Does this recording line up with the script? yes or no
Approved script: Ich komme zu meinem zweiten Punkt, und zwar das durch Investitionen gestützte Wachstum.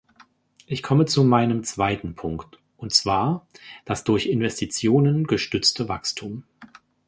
yes